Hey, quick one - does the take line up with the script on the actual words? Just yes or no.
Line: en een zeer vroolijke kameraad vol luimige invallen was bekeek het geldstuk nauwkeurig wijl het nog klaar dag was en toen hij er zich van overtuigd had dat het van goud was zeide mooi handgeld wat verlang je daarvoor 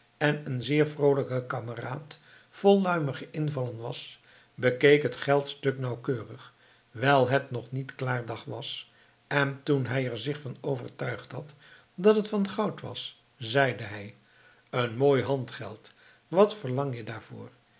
no